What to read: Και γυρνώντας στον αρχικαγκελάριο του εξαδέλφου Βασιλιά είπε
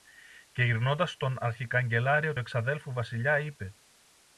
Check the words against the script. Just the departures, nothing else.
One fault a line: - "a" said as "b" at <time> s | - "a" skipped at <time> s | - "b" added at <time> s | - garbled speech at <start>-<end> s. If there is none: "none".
- "του" skipped at 2.4 s